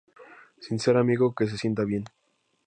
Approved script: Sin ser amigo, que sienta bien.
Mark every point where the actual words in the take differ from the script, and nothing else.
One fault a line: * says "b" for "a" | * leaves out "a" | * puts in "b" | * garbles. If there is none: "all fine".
* puts in "se"